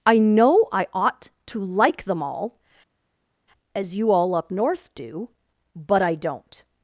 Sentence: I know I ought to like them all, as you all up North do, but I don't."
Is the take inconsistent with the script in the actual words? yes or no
no